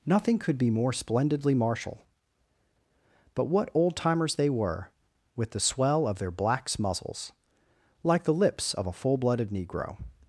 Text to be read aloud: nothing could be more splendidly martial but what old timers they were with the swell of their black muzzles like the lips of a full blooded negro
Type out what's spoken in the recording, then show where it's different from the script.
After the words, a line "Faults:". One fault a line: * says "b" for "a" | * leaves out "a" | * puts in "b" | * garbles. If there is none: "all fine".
nothing could be more splendidly martial but what old timers they were with the swell of their blacks muzzles like the lips of a full blooded negro
Faults:
* says "blacks" for "black"